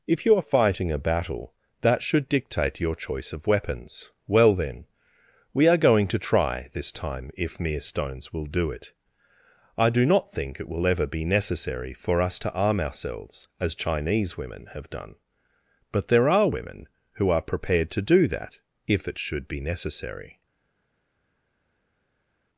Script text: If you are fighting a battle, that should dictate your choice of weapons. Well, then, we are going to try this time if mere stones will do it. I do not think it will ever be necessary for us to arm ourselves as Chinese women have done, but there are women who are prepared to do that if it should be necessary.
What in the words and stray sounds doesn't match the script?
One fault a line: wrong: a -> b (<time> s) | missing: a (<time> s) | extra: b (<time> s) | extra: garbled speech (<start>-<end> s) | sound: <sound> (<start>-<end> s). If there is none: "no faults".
no faults